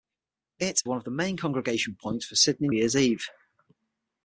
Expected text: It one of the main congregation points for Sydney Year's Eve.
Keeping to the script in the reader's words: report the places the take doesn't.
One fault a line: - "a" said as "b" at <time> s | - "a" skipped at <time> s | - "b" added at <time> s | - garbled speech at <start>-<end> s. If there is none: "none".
none